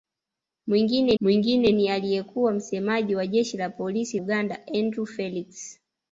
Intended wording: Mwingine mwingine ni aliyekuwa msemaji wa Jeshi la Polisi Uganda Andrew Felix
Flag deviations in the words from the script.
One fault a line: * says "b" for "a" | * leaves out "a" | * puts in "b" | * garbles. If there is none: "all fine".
all fine